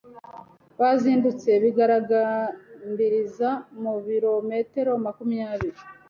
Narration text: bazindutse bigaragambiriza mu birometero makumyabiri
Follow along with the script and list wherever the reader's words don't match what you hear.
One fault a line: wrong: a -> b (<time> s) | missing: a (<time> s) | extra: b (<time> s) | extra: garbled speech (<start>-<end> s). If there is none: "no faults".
no faults